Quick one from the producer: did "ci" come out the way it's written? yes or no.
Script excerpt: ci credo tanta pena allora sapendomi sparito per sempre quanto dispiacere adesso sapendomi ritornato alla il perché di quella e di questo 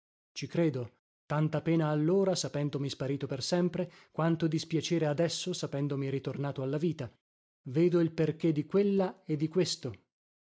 yes